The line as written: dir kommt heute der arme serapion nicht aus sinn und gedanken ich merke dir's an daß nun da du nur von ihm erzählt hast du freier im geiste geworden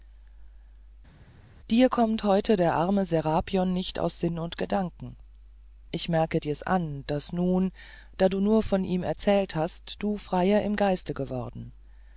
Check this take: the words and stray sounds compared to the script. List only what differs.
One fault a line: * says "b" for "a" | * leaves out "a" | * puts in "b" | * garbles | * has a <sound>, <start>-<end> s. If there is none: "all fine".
all fine